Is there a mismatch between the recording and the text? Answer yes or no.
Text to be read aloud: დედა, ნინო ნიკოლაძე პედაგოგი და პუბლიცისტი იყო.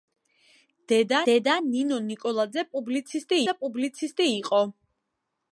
yes